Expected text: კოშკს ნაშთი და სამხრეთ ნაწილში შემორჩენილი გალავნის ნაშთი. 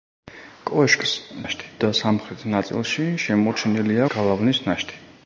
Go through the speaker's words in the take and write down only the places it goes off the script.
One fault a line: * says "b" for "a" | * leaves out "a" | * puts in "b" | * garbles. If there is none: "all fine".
all fine